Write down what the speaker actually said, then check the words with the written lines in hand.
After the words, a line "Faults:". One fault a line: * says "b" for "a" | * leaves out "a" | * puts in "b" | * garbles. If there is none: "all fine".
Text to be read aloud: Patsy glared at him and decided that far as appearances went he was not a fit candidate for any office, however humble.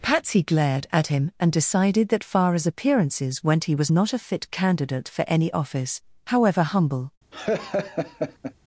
Patsy glared at him and decided that far as appearances went he was not a fit candidate for any office, however humble.
Faults:
all fine